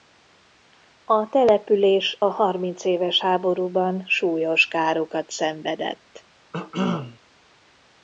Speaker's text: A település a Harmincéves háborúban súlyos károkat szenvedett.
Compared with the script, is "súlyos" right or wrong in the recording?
right